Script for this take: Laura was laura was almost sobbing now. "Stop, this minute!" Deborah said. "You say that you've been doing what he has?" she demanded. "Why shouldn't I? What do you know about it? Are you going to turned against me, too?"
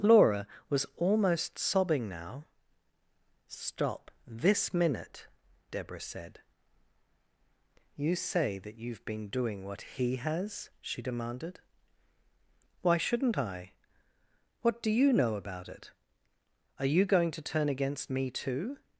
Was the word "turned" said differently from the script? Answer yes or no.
yes